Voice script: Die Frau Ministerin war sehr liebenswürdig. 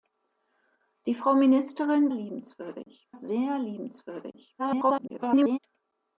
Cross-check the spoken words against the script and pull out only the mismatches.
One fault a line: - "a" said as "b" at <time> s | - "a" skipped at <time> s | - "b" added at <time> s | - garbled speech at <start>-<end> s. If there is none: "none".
- "war" said as "liebenswürdig" at 2.1 s
- garbled speech at 4.6-5.6 s